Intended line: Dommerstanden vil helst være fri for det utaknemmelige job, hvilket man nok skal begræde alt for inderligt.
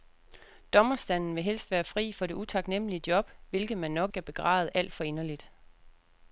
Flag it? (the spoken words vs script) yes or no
no